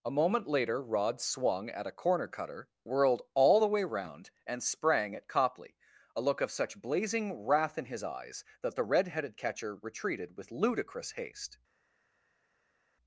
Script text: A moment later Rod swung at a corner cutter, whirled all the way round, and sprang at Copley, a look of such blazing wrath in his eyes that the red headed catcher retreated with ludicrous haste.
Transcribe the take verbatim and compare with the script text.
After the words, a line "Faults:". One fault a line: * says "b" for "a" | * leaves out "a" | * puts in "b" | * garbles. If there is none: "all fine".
A moment later Rod swung at a corner cutter, whirled all the way round, and sprang at Copley, a look of such blazing wrath in his eyes that the red headed catcher retreated with ludicrous haste.
Faults:
all fine